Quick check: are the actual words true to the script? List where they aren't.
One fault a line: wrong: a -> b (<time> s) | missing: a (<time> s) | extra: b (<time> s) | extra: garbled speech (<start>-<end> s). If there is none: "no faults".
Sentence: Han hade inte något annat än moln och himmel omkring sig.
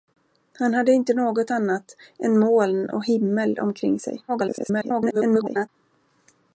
extra: garbled speech (4.3-5.7 s)